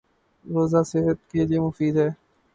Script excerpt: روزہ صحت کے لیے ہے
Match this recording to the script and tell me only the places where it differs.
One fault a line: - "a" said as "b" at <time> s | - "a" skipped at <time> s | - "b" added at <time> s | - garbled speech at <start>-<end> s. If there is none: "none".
- "مفید" added at 1.6 s